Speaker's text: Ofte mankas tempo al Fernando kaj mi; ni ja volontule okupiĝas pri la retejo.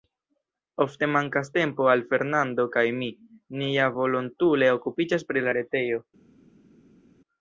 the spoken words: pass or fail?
pass